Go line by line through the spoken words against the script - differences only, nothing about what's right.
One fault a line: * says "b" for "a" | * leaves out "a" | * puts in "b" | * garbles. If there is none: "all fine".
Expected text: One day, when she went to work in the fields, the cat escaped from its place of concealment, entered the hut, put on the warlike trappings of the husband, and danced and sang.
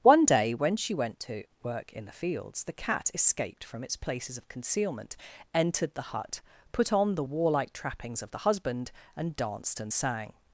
* says "places" for "place"